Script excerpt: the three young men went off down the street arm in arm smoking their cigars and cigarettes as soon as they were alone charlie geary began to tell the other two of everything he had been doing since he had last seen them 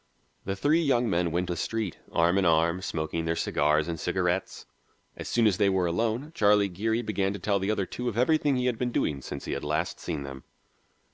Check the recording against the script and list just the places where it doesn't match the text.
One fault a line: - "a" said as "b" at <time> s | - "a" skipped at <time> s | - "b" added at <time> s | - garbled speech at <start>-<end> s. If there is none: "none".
- "off down" skipped at 1.5 s